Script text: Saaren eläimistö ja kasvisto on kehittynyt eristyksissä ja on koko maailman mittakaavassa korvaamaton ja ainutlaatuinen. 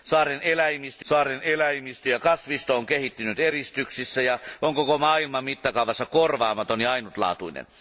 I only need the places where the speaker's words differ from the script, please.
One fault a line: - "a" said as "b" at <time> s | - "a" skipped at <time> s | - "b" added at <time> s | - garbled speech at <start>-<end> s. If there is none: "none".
- "saaren eläimistö" added at 1.0 s